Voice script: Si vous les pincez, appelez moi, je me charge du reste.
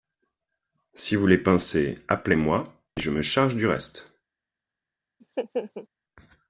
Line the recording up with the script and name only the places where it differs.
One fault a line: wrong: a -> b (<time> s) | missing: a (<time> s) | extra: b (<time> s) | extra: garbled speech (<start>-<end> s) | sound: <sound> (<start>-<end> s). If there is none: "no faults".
sound: laugh (5.2-5.9 s)